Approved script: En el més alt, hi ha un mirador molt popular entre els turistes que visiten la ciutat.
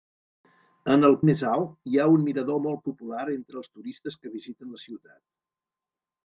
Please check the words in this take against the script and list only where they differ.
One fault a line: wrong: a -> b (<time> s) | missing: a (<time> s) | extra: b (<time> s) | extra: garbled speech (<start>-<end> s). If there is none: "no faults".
no faults